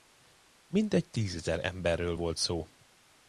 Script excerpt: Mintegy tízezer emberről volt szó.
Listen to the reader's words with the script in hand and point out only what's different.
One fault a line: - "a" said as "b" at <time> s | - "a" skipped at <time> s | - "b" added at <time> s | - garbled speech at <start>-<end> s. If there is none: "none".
none